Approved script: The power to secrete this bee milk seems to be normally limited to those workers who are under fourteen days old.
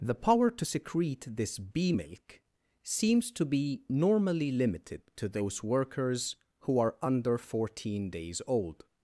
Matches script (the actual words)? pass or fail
pass